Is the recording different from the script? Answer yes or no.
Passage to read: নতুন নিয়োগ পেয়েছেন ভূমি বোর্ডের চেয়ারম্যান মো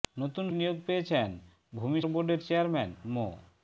no